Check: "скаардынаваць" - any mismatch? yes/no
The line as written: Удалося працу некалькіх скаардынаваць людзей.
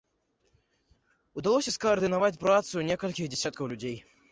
yes